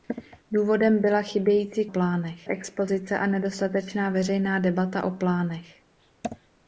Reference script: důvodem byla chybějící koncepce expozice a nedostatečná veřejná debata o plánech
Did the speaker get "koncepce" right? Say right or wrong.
wrong